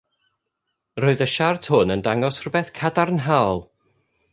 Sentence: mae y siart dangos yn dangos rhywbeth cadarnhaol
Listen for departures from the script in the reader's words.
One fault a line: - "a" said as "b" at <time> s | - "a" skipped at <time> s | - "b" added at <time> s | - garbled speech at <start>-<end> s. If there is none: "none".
- "mae" said as "roedd" at 1.0 s
- "dangos" said as "hwn" at 1.7 s